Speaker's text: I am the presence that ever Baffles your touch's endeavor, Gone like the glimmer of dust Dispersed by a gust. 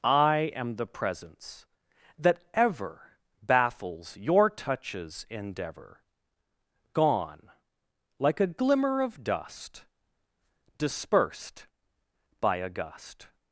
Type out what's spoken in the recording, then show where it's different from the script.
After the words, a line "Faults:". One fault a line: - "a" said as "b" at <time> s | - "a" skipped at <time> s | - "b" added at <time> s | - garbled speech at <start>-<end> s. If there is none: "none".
I am the presence that ever Baffles your touch's endeavor, Gone like a glimmer of dust Dispersed by a gust.
Faults:
- "the" said as "a" at 8.4 s